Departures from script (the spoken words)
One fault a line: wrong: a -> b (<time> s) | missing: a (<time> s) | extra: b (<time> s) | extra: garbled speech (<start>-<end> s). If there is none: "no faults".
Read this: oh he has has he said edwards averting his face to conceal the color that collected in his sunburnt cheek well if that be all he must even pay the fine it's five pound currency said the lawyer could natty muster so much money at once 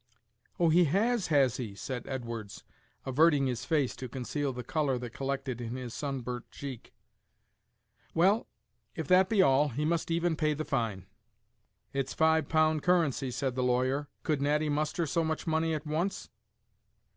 no faults